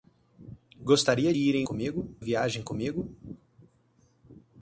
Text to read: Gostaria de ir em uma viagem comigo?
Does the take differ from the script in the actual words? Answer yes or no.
yes